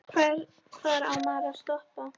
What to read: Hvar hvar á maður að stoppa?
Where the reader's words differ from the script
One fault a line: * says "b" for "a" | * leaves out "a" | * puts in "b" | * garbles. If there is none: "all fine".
* leaves out "hvar"